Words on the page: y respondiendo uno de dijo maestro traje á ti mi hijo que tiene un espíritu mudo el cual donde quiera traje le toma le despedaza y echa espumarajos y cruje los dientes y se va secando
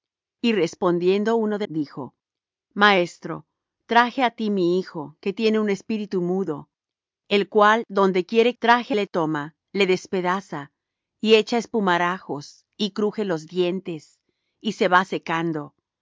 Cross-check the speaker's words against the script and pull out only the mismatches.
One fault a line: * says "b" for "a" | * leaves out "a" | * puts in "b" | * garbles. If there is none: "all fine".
all fine